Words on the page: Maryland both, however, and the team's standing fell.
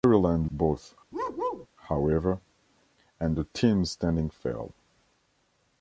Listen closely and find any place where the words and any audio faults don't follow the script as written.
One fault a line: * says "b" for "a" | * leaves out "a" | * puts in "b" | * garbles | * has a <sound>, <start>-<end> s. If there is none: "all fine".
* has a bark, 1.1-1.7 s